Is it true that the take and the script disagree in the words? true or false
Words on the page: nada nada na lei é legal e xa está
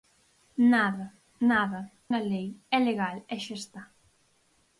false